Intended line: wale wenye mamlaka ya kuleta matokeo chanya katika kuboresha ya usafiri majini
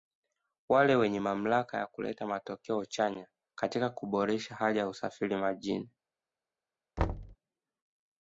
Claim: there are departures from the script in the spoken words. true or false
true